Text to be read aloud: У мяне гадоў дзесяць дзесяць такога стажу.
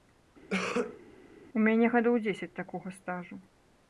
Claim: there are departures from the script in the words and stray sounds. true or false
true